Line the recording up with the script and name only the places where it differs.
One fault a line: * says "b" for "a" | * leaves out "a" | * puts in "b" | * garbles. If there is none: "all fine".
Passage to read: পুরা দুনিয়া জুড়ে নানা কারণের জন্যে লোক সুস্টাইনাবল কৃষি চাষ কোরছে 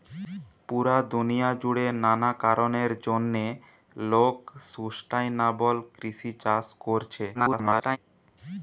* garbles